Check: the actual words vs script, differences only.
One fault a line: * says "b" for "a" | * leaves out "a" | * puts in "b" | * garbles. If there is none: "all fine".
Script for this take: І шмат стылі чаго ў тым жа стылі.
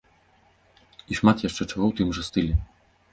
* says "яшчэ" for "стылі"